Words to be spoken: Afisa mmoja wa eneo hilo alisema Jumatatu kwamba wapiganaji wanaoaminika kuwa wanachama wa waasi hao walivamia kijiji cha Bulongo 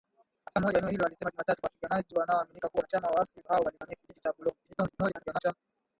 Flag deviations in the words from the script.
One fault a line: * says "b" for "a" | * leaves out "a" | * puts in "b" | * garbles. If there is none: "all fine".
* leaves out "kwamba"
* garbles